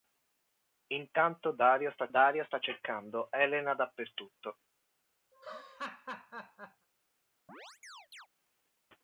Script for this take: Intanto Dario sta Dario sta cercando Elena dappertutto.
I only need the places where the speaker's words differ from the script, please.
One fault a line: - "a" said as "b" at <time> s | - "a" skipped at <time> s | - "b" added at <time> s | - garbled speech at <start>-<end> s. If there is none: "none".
none